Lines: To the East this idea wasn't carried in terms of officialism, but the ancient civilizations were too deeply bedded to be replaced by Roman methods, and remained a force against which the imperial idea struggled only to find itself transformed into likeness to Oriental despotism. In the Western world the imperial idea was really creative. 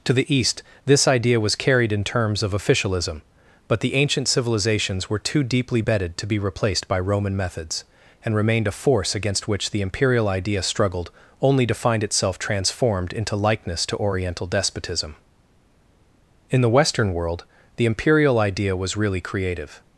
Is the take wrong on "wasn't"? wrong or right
wrong